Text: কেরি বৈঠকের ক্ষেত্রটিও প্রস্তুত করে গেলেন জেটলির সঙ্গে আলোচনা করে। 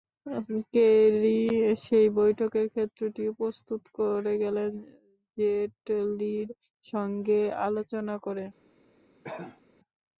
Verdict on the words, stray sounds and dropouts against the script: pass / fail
fail